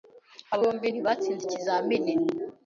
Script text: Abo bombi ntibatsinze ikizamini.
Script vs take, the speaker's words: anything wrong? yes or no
no